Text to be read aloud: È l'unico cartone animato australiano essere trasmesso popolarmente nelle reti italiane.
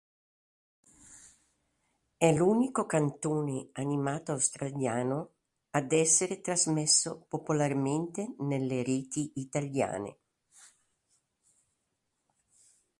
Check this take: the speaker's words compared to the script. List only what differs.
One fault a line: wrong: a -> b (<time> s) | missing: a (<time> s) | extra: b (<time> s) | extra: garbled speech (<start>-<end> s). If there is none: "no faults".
extra: ad (5.7 s)